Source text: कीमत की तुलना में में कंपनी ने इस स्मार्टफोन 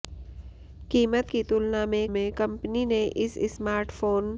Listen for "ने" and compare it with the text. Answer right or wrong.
right